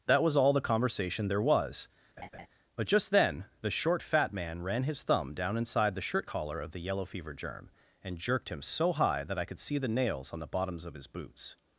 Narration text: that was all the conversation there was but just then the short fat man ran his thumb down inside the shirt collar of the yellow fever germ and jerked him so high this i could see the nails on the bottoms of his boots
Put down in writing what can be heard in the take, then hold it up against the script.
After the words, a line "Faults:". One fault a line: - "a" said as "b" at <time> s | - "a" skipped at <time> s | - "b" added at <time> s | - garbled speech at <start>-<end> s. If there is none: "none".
that was all the conversation there was but just then the short fat man ran his thumb down inside the shirt collar of the yellow fever germ and jerked him so high that i could see the nails on the bottoms of his boots
Faults:
- "this" said as "that" at 9.2 s